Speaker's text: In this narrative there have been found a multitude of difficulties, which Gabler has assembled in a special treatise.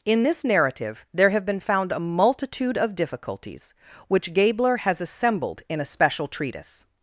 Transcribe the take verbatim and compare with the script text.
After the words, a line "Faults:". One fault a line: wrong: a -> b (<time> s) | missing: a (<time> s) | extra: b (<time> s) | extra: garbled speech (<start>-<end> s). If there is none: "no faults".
In this narrative there have been found a multitude of difficulties, which Gabler has assembled in a special treatise.
Faults:
no faults